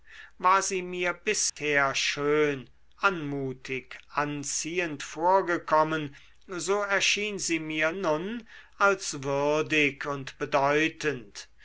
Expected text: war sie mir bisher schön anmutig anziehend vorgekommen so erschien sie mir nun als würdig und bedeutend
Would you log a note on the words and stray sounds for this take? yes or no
yes